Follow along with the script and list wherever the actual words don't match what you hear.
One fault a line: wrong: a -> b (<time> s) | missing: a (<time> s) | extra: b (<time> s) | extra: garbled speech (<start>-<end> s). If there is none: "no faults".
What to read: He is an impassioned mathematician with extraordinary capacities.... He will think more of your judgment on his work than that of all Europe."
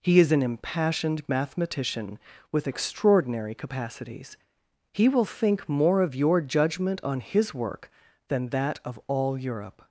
no faults